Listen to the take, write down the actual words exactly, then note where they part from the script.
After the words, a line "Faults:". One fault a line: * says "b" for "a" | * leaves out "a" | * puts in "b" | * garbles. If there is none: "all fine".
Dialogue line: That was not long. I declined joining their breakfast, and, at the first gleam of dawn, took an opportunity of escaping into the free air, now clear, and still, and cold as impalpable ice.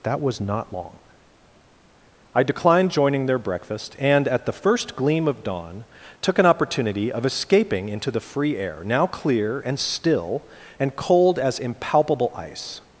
That was not long. I declined joining their breakfast, and, at the first gleam of dawn, took an opportunity of escaping into the free air, now clear, and still, and cold as impalpable ice.
Faults:
all fine